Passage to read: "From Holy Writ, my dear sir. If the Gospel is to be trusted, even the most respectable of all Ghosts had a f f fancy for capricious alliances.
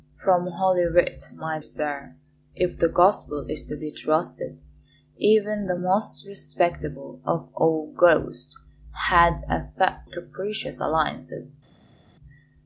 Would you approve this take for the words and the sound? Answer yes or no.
no